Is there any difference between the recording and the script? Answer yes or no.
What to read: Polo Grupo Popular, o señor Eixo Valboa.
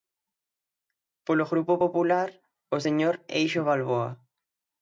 no